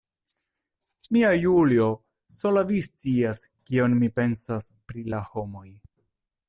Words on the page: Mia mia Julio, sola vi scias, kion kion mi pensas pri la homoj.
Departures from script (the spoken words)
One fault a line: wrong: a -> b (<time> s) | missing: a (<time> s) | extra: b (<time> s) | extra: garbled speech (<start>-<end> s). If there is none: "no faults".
missing: mia (1.3 s)
missing: kion (4.0 s)